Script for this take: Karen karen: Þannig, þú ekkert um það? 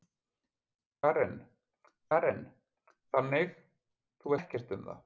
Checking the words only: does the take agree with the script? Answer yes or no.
yes